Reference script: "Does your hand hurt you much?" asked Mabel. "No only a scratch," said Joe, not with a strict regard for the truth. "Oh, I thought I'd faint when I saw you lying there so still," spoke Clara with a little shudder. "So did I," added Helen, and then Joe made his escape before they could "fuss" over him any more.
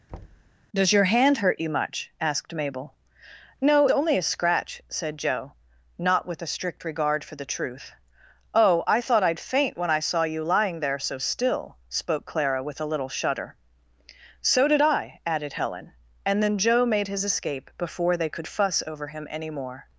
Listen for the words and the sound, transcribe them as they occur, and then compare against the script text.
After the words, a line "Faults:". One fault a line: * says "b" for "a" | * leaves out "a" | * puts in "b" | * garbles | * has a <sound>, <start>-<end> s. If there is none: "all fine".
"Does your hand hurt you much?" asked Mabel. "No only a scratch," said Joe, not with a strict regard for the truth. "Oh, I thought I'd faint when I saw you lying there so still," spoke Clara with a little shudder. "So did I," added Helen, and then Joe made his escape before they could "fuss" over him any more.
Faults:
* has a thud, 0.1-0.5 s